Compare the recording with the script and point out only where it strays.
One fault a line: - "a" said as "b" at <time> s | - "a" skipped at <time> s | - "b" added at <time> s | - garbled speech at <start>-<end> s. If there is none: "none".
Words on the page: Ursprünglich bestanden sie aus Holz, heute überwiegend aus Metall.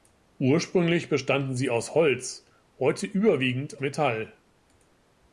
- "aus" skipped at 3.8 s